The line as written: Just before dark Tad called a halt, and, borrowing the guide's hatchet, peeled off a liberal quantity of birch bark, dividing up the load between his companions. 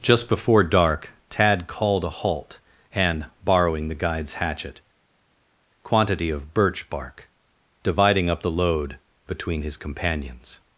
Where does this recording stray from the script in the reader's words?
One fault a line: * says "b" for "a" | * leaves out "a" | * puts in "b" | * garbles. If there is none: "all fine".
* leaves out "peeled off a liberal"